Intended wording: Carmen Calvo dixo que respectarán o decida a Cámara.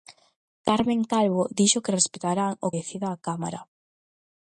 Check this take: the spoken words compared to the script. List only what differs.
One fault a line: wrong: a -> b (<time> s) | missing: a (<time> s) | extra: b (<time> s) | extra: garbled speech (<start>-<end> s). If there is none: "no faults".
no faults